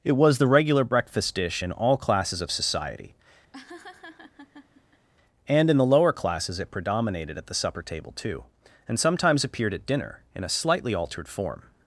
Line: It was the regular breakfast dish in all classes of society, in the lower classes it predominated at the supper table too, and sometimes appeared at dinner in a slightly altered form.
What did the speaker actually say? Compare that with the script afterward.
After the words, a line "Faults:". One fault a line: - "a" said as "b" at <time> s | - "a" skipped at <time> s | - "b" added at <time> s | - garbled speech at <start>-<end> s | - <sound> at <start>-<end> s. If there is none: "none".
It was the regular breakfast dish in all classes of society, and in the lower classes it predominated at the supper table too, and sometimes appeared at dinner in a slightly altered form.
Faults:
- laugh at 3.5-5.1 s
- "and" added at 5.5 s